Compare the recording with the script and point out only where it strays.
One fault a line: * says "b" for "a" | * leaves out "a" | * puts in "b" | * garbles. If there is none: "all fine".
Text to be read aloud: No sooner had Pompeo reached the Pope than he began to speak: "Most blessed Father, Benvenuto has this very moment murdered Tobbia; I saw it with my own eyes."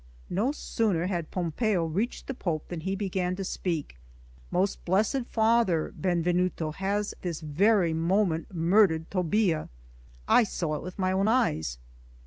all fine